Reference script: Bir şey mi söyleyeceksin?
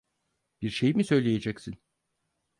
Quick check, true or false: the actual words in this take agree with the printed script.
true